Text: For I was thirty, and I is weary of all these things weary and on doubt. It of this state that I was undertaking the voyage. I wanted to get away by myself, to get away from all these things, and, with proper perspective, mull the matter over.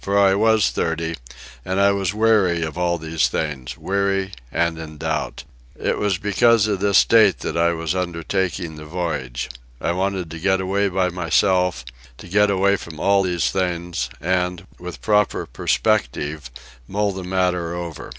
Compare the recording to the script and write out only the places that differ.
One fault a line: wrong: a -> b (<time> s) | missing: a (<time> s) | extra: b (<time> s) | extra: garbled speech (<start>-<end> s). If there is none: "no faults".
wrong: is -> was (1.9 s)
wrong: on -> in (4.8 s)
extra: was because (6.0 s)